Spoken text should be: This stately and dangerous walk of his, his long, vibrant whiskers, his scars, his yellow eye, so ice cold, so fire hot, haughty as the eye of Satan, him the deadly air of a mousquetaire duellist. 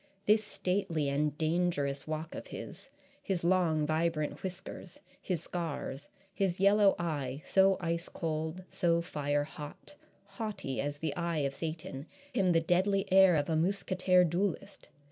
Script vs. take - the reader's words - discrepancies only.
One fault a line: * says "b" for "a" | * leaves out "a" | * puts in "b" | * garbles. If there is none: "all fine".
all fine